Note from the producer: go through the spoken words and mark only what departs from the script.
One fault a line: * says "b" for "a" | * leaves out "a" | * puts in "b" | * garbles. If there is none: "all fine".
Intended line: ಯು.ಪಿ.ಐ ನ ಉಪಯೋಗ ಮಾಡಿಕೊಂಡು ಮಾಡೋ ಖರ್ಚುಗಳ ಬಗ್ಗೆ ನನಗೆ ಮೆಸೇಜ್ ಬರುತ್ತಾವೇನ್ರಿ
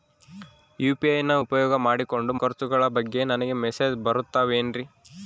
* leaves out "ಮಾಡೋ"